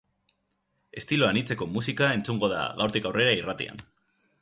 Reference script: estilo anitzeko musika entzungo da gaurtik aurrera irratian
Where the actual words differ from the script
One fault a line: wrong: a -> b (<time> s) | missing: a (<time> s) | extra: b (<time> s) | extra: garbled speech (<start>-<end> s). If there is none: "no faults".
no faults